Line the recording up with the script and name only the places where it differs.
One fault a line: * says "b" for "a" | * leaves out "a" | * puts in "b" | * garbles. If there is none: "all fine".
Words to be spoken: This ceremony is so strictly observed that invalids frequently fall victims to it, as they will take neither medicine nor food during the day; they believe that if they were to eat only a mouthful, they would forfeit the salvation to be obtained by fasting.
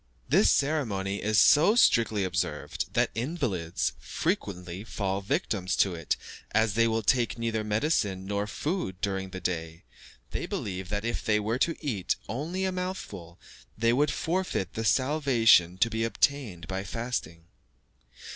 all fine